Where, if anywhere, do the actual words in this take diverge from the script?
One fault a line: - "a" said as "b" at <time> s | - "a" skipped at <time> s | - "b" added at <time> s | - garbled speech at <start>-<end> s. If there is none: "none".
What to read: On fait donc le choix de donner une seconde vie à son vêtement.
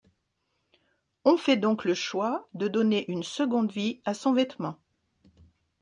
none